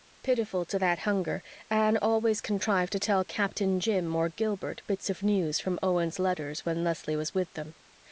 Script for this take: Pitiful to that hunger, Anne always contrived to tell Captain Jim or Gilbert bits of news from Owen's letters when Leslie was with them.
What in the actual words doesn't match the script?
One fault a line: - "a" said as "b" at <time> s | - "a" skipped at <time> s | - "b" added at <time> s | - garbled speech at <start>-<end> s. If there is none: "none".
none